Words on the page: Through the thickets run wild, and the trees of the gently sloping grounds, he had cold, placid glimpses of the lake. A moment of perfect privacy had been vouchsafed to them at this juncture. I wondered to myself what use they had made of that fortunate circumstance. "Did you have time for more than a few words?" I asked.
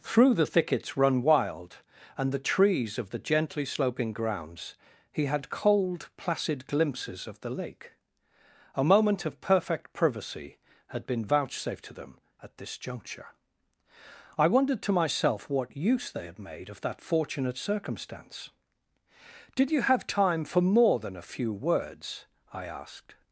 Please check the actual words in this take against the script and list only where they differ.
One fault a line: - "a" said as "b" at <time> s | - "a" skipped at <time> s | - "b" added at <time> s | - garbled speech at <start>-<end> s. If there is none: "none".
none